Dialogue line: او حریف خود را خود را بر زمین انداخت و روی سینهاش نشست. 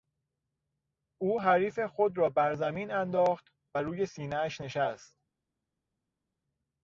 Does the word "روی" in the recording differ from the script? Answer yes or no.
no